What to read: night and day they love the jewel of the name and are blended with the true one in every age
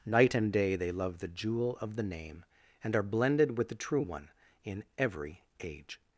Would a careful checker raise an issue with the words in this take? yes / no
no